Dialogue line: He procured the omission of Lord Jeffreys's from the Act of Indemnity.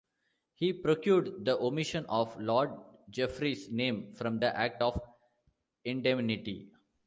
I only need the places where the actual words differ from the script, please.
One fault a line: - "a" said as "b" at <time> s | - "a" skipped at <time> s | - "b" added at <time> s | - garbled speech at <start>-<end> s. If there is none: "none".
- "name" added at 3.7 s